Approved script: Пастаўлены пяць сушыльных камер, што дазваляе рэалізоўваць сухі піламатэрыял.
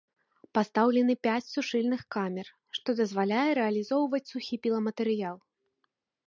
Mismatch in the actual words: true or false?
false